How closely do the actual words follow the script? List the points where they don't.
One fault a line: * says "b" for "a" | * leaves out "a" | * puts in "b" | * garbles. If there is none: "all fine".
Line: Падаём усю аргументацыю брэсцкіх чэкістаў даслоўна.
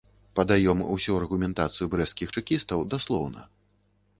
all fine